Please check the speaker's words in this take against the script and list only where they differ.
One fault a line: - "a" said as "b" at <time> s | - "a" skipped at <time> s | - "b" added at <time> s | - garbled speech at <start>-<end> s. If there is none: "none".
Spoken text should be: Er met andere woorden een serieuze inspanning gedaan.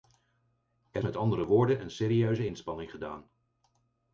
none